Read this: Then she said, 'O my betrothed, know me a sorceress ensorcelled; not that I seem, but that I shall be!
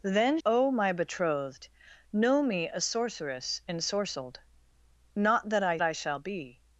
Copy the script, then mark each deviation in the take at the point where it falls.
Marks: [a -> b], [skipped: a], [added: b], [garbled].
Then [skipped: she said,] 'O my betrothed, know me a sorceress ensorcelled; not that I [skipped: seem, but that] I shall be!